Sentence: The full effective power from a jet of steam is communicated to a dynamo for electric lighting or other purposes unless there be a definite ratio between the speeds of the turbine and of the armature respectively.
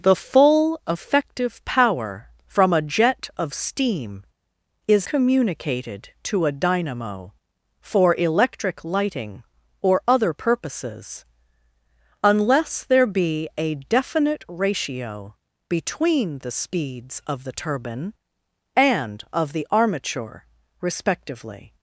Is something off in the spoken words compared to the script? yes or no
no